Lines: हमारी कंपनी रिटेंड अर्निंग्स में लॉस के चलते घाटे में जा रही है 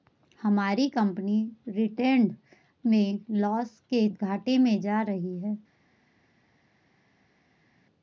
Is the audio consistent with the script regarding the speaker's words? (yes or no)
no